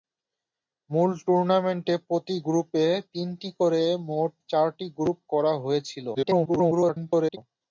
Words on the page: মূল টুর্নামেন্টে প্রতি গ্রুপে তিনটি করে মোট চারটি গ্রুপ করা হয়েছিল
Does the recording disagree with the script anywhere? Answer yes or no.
yes